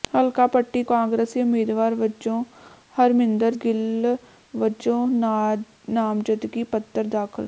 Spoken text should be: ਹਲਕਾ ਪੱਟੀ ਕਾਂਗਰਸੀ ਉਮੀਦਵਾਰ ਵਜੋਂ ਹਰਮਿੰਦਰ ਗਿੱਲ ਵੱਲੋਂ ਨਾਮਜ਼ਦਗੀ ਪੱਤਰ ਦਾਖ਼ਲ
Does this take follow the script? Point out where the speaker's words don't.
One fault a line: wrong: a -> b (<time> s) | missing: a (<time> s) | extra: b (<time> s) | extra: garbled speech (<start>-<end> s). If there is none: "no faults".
no faults